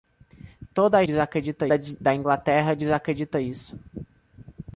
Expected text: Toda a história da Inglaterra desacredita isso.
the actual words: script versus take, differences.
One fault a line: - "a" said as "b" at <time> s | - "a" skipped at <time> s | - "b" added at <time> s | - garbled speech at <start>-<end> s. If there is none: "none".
- "história" said as "desacredita" at 1.0 s